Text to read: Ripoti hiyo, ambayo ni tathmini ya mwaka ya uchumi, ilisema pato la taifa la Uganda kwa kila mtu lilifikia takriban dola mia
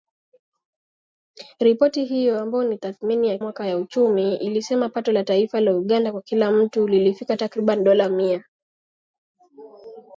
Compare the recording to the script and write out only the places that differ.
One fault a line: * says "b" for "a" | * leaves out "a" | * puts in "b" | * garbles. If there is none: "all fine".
all fine